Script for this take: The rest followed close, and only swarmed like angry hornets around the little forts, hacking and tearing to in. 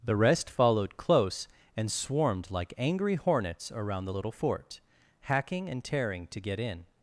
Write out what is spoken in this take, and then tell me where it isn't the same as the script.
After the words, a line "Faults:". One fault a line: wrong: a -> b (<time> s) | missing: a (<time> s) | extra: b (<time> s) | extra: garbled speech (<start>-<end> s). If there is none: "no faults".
The rest followed close, and swarmed like angry hornets around the little fort, hacking and tearing to get in.
Faults:
missing: only (1.9 s)
wrong: forts -> fort (4.3 s)
extra: get (6.4 s)